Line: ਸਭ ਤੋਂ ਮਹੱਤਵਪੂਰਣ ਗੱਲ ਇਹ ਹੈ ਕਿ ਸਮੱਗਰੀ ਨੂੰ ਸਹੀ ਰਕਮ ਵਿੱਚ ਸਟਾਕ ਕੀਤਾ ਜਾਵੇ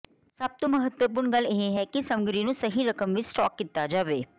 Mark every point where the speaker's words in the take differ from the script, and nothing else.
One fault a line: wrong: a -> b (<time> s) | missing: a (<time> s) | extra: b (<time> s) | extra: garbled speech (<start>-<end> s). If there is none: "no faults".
no faults